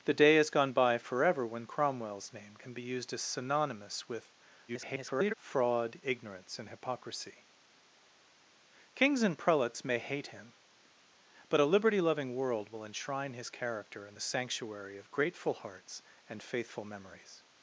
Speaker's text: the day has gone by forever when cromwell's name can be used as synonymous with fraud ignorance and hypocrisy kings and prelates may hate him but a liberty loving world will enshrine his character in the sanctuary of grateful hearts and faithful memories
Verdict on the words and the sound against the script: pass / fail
fail